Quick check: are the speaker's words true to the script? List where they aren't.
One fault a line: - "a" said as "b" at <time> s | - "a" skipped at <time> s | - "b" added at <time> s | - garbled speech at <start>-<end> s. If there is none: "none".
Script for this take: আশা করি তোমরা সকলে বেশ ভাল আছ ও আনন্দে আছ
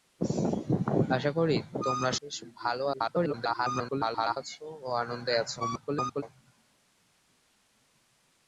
- "সকলে" skipped at 2.1 s
- garbled speech at 2.9-4.4 s
- garbled speech at 5.6-6.2 s